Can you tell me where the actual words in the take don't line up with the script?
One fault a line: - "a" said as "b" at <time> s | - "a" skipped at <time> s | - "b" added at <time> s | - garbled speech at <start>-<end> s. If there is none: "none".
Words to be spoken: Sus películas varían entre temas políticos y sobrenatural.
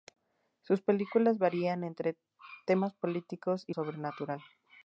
none